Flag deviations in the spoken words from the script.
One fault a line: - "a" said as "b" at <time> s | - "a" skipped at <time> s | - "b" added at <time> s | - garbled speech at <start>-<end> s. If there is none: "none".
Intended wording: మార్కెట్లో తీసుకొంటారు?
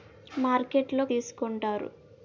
none